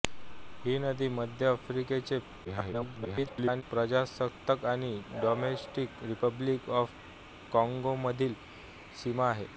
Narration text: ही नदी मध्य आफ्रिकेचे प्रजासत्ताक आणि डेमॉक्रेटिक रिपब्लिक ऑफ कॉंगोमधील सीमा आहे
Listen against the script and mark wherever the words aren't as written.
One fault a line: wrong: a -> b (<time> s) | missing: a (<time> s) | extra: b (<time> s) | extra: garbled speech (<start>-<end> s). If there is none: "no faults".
extra: garbled speech (2.4-3.6 s)